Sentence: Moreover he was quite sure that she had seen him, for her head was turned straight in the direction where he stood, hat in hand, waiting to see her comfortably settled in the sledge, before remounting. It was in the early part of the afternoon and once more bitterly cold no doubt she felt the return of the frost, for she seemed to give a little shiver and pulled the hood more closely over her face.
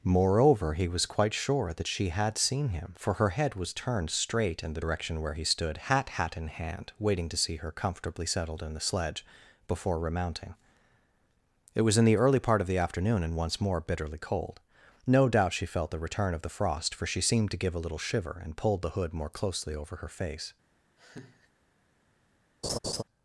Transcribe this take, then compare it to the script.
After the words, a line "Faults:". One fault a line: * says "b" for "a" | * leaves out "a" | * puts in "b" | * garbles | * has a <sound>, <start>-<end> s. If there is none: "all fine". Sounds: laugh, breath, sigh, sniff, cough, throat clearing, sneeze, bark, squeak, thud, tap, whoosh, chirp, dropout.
Moreover he was quite sure that she had seen him, for her head was turned straight in the direction where he stood, hat hat in hand, waiting to see her comfortably settled in the sledge, before remounting. It was in the early part of the afternoon and once more bitterly cold no doubt she felt the return of the frost, for she seemed to give a little shiver and pulled the hood more closely over her face.
Faults:
* puts in "hat"
* has a laugh, 21.0-21.5 s
* has a laugh, 22.6-23.0 s